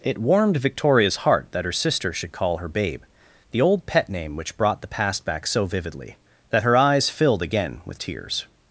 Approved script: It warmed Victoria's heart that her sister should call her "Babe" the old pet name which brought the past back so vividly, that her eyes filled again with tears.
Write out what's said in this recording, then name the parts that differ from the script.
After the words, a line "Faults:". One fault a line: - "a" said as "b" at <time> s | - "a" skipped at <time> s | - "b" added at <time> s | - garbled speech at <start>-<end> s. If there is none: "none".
It warmed Victoria's heart that her sister should call her "Babe" the old pet name which brought the past back so vividly, that her eyes filled again with tears.
Faults:
none